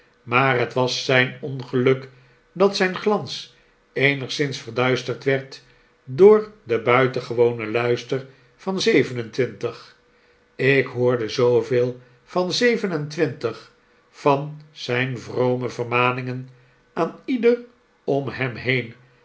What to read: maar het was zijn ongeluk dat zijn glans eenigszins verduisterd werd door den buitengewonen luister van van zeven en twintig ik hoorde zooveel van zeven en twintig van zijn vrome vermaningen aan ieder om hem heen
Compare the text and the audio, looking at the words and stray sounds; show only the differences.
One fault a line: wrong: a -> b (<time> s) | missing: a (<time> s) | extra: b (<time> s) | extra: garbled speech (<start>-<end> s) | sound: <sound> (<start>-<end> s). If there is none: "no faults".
missing: van (8.8 s)